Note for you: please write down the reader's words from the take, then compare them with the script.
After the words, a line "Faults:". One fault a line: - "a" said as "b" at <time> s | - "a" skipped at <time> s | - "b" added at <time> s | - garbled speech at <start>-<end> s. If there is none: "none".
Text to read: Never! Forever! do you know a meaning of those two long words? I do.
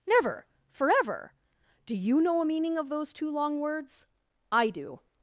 Never! Forever! do you know a meaning of those two long words? I do.
Faults:
none